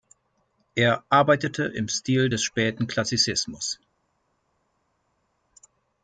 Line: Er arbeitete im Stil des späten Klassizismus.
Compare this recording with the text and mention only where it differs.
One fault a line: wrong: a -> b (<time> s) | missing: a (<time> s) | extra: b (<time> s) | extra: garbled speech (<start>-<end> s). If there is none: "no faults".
no faults